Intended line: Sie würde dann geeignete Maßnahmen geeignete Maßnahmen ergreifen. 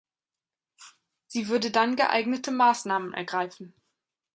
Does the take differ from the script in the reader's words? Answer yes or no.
yes